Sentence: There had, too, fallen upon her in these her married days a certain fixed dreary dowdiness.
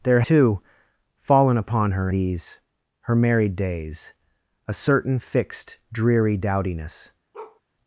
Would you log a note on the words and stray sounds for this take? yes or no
yes